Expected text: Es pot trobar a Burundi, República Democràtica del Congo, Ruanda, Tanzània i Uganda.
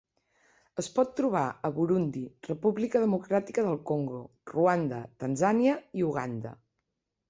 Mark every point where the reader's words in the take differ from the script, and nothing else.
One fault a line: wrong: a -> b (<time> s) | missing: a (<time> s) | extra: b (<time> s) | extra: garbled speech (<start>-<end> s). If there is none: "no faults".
no faults